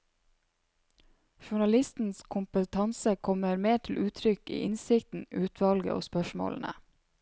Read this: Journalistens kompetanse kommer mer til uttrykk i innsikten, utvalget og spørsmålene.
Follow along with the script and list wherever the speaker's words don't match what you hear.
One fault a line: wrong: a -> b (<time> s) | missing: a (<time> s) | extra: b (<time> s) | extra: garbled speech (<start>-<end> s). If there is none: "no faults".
no faults